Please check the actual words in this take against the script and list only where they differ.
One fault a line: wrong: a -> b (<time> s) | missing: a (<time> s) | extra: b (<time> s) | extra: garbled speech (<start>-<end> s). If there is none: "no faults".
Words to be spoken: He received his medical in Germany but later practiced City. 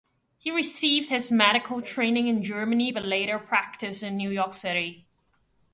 extra: training (1.8 s)
extra: in New York (4.0 s)